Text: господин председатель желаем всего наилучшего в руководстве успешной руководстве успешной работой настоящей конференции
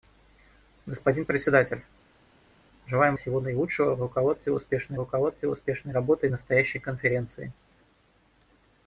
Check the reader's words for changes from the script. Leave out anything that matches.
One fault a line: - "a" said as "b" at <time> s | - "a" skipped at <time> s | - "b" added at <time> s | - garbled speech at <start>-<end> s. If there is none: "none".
none